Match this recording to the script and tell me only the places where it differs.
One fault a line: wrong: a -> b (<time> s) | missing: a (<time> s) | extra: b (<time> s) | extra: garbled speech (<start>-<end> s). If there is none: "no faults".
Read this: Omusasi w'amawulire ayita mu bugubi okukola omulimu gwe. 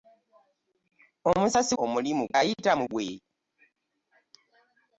wrong: w'amawulire -> omulimu (1.8 s)
missing: bugubi okukola omulimu (2.8 s)